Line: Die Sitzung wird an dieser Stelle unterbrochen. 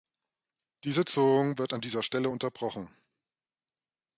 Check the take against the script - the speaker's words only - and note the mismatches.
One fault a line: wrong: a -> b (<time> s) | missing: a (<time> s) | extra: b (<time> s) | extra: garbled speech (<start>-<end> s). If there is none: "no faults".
no faults